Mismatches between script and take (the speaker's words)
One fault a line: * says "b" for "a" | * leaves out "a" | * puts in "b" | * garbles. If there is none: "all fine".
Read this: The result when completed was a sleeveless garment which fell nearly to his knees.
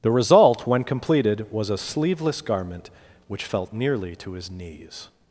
* says "felt" for "fell"